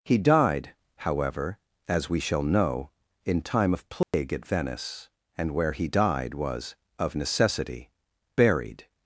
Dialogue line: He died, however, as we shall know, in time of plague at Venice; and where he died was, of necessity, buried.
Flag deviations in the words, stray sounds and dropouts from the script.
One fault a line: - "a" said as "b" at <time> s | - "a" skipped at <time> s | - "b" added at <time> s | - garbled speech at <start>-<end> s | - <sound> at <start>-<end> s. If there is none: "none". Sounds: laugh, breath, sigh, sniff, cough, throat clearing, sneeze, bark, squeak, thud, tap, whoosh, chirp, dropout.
- dropout at 4.0-4.1 s